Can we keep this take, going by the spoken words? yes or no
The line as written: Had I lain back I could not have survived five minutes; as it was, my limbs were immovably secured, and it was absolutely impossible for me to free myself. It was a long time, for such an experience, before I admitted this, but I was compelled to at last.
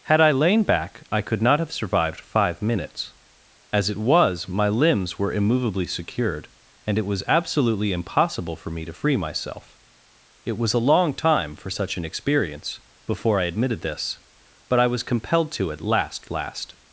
no